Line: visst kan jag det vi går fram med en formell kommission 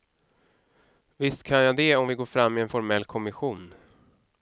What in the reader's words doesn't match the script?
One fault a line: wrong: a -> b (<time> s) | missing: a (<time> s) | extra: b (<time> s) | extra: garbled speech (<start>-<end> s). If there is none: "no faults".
extra: om (1.9 s)